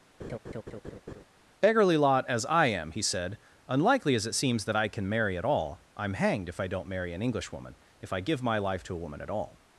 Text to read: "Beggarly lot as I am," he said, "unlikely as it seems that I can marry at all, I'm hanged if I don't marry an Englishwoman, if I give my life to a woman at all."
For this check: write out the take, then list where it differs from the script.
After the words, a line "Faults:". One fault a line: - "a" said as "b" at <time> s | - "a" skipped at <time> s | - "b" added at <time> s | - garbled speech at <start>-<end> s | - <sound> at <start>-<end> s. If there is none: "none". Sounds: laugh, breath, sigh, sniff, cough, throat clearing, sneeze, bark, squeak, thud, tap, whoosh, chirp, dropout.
"Beggarly lot as I am," he said, "unlikely as it seems that I can marry at all, I'm hanged if I don't marry an Englishwoman, if I give my life to a woman at all."
Faults:
- laugh at 0.2-1.2 s